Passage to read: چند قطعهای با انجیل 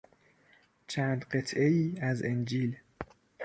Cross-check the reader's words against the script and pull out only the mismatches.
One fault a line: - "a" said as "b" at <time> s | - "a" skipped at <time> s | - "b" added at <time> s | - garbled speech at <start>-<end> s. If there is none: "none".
- "با" said as "از" at 2.0 s